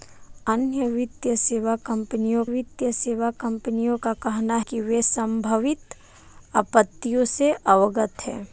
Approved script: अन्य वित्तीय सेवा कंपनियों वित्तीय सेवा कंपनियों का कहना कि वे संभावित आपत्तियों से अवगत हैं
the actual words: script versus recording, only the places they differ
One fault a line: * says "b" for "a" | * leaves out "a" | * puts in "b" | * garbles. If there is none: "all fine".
all fine